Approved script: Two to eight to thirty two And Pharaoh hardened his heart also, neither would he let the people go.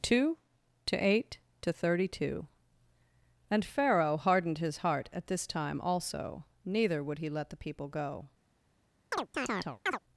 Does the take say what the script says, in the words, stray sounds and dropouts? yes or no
no